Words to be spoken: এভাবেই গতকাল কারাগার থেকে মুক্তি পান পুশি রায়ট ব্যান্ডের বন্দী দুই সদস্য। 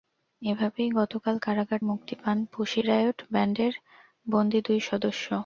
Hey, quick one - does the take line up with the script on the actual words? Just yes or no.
no